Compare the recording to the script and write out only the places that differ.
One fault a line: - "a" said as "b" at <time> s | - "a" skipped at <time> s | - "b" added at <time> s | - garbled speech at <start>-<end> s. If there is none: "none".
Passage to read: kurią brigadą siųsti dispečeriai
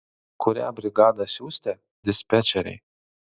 none